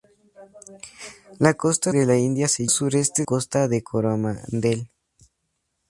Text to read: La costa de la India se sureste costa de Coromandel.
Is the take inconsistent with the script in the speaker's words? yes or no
no